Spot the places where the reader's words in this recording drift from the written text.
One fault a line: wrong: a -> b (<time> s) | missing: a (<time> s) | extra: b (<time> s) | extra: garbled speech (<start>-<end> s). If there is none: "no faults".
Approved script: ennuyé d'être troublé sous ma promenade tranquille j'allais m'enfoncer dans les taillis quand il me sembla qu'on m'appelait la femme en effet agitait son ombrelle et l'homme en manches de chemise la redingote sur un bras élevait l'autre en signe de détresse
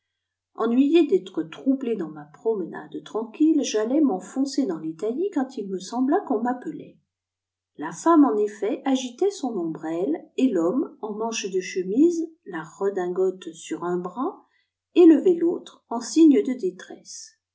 wrong: sous -> dans (1.9 s)